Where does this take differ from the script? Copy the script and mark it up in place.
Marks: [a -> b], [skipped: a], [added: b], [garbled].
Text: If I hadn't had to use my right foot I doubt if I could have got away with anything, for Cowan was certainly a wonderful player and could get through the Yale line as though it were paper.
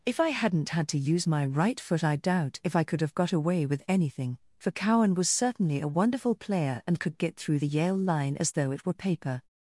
If I hadn't had to use my right foot I doubt if I could have got away with anything, for Cowan was certainly a wonderful player and could get through the Yale line as though it were paper.